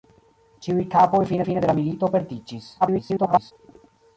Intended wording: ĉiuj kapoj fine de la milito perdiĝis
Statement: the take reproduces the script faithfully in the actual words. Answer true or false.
false